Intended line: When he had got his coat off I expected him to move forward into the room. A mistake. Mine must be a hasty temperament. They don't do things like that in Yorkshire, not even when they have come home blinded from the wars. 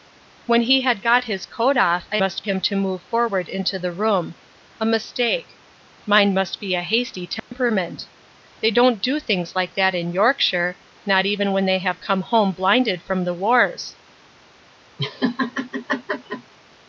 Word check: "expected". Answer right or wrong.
wrong